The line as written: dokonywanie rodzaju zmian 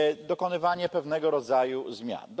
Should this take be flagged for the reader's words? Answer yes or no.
yes